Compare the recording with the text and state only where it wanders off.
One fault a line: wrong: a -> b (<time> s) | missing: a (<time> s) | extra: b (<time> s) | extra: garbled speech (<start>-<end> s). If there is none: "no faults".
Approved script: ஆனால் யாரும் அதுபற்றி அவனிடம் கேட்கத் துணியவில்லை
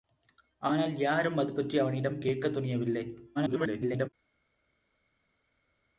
extra: garbled speech (3.4-4.1 s)